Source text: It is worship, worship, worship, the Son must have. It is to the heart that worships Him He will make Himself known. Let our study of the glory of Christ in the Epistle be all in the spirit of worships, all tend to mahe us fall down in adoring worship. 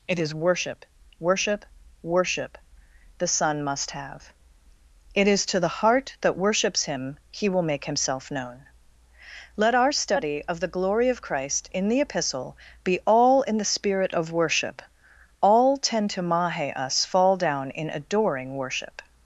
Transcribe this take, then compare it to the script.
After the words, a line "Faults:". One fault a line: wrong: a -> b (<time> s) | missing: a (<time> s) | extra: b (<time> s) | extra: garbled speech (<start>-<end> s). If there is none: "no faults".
It is worship, worship, worship, the Son must have. It is to the heart that worships Him He will make Himself known. Let our study of the glory of Christ in the Epistle be all in the spirit of worship, all tend to mahe us fall down in adoring worship.
Faults:
wrong: worships -> worship (14.3 s)